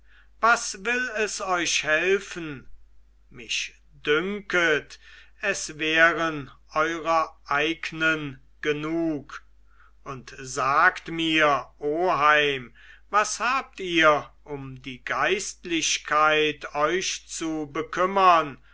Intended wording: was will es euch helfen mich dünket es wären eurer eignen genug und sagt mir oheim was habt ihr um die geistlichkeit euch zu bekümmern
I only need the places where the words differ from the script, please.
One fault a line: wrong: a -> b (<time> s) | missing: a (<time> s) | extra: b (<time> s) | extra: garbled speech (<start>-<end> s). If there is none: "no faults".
no faults